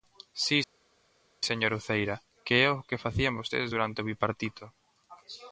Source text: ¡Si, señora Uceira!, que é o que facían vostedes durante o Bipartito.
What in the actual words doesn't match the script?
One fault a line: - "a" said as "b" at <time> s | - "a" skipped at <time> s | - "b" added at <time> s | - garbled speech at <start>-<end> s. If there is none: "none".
none